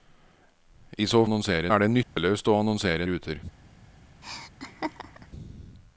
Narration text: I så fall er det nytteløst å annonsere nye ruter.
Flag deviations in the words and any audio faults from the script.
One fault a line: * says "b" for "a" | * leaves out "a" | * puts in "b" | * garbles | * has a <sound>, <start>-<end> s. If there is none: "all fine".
* says "annonsere" for "fall"
* has a dropout, 2.0-2.2 s
* leaves out "nye"
* has a laugh, 4.2-5.3 s